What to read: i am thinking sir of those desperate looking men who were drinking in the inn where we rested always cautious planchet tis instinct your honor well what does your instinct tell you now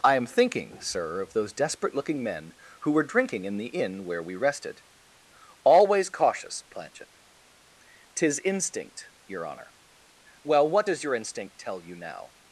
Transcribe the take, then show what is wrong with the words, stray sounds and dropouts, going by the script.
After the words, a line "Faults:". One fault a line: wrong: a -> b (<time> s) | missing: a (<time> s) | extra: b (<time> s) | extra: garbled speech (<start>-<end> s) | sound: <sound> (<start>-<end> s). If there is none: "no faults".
i am thinking sir of those desperate looking men who were drinking in the inn where we rested always cautious planchet tis instinct your honor well what does your instinct tell you now
Faults:
no faults